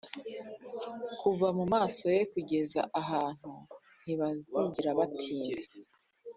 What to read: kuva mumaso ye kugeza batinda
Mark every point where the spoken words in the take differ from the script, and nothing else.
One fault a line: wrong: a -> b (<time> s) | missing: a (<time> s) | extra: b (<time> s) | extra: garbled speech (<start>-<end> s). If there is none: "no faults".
extra: ahantu ntibazigera (3.0 s)